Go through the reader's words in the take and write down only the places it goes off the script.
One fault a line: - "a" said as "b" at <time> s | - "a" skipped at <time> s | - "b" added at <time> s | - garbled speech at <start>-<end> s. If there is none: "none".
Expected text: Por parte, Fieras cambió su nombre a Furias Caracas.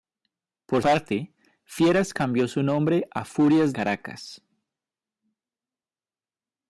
none